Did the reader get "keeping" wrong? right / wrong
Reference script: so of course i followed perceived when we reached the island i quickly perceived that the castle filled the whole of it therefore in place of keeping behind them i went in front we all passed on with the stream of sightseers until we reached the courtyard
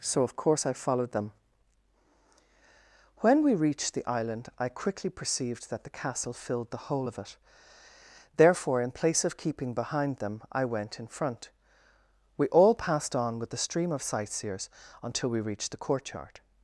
right